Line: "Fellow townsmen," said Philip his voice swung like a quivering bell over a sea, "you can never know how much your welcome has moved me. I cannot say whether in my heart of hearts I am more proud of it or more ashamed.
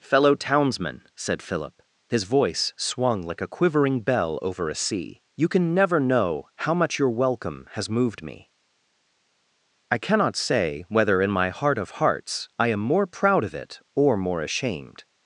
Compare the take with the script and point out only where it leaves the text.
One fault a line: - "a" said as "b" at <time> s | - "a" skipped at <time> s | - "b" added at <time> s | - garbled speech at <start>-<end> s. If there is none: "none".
none